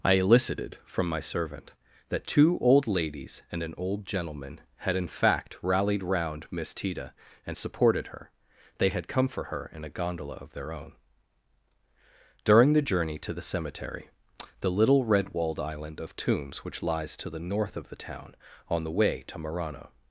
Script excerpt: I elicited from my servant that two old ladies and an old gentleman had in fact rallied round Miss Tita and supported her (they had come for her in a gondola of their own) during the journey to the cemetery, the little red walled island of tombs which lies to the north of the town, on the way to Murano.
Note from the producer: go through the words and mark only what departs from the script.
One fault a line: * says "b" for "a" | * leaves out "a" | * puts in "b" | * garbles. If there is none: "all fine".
all fine